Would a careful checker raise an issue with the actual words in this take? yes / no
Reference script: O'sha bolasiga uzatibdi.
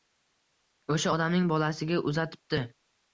yes